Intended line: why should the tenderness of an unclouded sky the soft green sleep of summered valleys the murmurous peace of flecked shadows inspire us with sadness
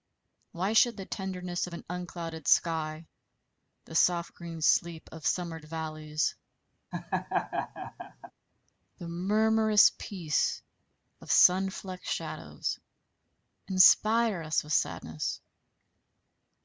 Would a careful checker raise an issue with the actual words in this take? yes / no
yes